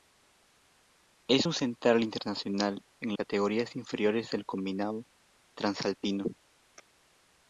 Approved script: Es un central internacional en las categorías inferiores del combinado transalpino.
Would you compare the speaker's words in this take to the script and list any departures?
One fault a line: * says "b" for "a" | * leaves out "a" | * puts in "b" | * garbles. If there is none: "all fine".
* leaves out "las"